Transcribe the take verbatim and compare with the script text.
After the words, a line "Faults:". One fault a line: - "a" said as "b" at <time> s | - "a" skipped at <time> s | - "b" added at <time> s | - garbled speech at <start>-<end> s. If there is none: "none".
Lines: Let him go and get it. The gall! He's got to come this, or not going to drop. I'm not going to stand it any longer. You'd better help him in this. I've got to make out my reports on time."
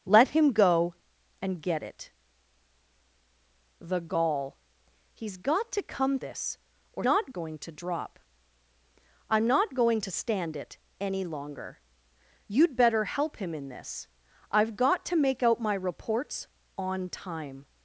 Let him go and get it. The gall! He's got to come this, or not going to drop. I'm not going to stand it any longer. You'd better help him in this. I've got to make out my reports on time."
Faults:
none